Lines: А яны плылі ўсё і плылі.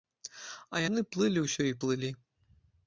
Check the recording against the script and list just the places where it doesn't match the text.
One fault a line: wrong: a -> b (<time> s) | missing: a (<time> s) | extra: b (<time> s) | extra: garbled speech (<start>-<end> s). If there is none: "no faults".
no faults